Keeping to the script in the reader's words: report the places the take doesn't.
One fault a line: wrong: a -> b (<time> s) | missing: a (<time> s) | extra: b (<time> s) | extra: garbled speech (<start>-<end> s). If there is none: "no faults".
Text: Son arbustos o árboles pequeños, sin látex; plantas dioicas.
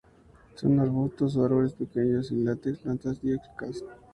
no faults